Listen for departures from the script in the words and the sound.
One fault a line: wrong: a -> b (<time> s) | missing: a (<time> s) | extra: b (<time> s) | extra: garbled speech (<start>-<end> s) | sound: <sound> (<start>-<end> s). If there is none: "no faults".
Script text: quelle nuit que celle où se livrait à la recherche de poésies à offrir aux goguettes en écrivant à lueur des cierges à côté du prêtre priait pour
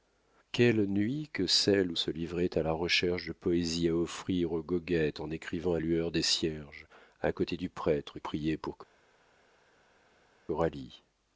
no faults